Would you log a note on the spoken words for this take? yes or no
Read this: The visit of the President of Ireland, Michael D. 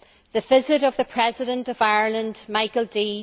no